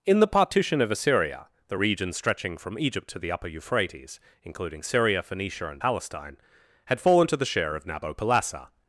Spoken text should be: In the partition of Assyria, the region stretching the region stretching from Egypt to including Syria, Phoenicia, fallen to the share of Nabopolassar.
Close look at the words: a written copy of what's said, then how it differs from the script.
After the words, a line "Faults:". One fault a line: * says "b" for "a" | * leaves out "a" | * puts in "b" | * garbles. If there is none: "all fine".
In the partition of Assyria, the region stretching from Egypt to the upper Euphrates, including Syria, Phoenicia, and Palestine, had fallen to the share of Nabopolassar.
Faults:
* says "from Egypt to the upper Euphrates" for "the region stretching from Egypt to"
* puts in "and Palestine had"